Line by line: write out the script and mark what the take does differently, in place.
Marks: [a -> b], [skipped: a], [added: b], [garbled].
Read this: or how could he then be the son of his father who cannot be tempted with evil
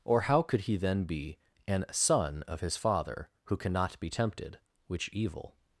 or how could he then be [the -> an] son of his father who cannot be tempted [with -> which] evil